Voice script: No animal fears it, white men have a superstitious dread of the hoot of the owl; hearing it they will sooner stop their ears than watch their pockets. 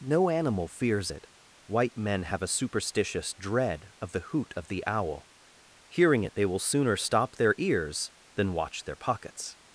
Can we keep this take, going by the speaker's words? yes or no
yes